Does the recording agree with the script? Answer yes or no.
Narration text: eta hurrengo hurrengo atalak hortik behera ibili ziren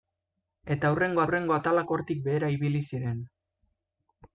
yes